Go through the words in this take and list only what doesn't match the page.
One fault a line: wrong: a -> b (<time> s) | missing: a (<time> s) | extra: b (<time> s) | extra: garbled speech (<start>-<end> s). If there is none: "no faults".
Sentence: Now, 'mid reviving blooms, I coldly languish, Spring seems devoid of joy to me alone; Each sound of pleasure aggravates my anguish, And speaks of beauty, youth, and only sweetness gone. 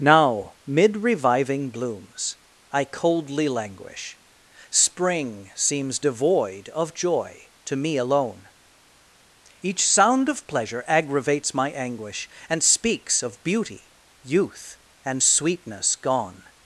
missing: only (15.2 s)